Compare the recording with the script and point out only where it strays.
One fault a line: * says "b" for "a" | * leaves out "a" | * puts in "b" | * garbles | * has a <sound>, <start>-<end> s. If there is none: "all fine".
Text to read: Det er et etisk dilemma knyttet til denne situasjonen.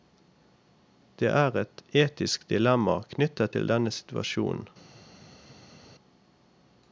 all fine